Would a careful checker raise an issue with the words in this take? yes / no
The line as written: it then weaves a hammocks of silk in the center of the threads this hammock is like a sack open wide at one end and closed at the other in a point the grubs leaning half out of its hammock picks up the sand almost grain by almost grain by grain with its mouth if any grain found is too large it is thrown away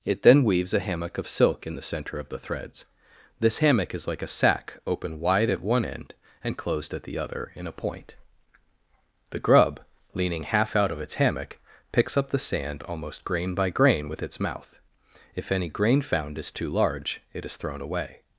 yes